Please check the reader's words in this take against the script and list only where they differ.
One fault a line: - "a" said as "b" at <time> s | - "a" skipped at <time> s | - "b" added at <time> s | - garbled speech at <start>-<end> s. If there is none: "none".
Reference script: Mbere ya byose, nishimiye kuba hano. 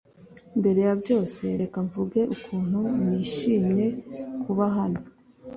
- "reka mvuge ukuntu" added at 1.6 s